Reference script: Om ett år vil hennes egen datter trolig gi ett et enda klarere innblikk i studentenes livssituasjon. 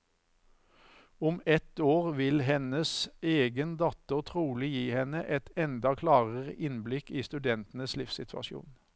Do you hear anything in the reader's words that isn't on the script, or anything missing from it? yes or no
yes